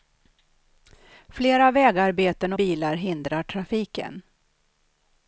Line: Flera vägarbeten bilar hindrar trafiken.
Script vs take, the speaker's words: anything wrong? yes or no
no